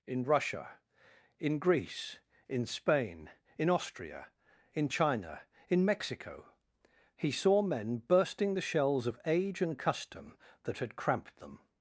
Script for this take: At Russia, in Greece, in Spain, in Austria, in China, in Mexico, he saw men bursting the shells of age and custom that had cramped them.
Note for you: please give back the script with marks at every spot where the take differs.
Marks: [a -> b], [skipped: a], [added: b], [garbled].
[At -> In] Russia, in Greece, in Spain, in Austria, in China, in Mexico, he saw men bursting the shells of age and custom that had cramped them.